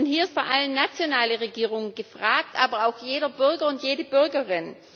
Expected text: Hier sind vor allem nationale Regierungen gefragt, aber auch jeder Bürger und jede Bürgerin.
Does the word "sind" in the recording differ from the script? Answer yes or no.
yes